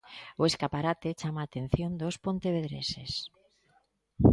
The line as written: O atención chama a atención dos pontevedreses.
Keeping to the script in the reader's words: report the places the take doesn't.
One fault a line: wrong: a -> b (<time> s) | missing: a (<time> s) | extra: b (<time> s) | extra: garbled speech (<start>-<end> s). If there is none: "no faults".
wrong: atención -> escaparate (0.5 s)